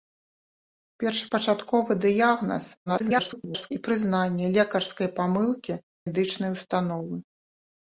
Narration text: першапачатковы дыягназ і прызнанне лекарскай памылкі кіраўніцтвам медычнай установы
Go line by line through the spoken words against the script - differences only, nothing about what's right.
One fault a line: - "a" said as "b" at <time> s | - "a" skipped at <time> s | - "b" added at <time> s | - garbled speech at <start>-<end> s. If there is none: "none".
- garbled speech at 2.9-3.7 s
- "кіраўніцтвам" skipped at 5.8 s